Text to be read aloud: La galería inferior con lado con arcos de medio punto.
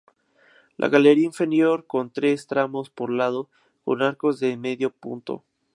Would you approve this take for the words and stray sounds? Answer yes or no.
no